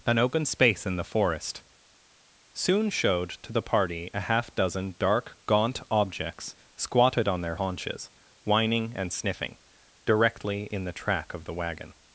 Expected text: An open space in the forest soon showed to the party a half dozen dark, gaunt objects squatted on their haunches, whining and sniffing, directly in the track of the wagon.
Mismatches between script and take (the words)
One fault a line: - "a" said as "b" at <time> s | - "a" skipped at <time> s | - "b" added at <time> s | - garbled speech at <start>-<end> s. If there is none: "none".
none